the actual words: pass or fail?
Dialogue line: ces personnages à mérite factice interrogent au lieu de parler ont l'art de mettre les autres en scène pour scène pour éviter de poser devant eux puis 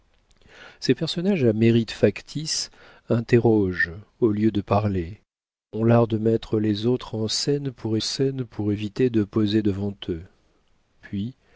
pass